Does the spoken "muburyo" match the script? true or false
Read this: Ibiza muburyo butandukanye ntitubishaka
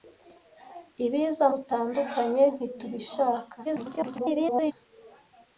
false